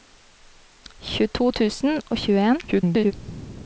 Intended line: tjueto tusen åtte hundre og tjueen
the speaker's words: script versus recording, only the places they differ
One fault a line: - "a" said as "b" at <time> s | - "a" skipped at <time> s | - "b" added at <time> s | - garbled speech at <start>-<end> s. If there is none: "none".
- "åtte hundre" skipped at 2.0 s
- garbled speech at 2.7-3.1 s